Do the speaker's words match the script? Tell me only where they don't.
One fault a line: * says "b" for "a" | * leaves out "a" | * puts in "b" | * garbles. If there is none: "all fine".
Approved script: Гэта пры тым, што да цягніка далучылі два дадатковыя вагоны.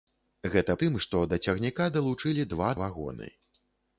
* leaves out "пры"
* leaves out "дадатковыя"